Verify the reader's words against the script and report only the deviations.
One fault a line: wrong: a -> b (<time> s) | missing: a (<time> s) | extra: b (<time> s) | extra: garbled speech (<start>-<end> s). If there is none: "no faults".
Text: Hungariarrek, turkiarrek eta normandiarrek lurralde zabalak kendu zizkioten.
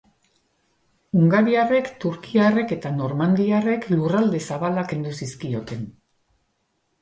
no faults